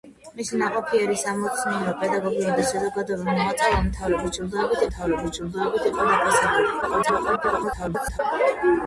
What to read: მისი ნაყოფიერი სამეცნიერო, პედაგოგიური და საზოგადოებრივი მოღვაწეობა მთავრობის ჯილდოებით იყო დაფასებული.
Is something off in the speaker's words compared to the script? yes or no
yes